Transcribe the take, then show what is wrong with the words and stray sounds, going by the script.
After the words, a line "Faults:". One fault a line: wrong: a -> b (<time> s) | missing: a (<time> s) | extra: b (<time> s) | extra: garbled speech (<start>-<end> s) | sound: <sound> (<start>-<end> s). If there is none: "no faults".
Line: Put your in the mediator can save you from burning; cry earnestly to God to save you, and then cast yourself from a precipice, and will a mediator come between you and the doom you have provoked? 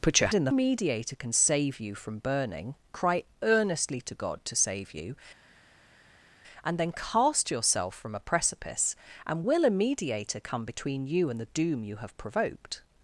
Put your in the mediator can save you from burning; cry earnestly to God to save you, and then cast yourself from a precipice, and will a mediator come between you and the doom you have provoked?
Faults:
no faults